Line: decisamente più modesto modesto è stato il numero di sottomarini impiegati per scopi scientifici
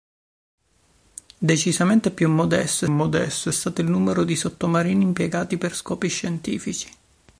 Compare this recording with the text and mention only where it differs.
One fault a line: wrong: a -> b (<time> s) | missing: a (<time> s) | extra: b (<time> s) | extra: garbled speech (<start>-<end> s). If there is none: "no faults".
no faults